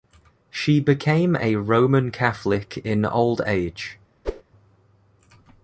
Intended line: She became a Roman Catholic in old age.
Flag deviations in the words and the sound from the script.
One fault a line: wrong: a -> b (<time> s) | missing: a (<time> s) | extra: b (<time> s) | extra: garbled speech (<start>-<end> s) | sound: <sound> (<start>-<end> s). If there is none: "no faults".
sound: whoosh (4.2-4.4 s)